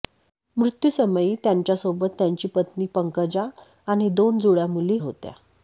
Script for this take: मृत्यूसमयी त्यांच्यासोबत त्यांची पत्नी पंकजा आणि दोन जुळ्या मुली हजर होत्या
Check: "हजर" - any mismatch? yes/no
yes